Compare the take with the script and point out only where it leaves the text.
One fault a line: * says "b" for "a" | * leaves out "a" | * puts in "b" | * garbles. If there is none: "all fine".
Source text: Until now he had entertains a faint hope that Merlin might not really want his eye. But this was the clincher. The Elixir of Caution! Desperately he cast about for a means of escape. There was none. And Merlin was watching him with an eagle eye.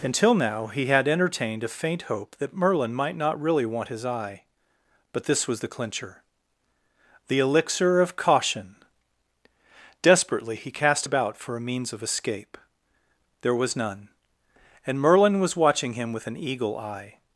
* says "entertained" for "entertains"